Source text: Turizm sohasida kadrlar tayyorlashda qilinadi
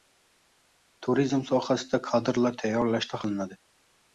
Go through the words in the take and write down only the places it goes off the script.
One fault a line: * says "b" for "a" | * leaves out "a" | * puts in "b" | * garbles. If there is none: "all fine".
all fine